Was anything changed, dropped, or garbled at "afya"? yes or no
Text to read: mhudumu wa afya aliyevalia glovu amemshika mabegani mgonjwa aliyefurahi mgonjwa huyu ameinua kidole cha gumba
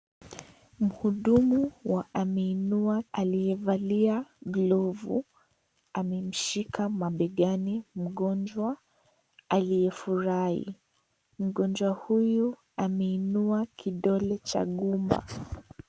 yes